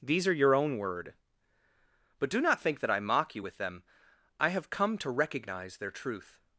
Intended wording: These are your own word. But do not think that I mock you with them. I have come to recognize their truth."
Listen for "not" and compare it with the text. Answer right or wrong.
right